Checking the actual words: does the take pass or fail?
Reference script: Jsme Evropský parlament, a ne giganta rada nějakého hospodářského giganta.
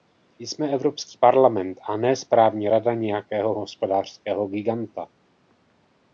fail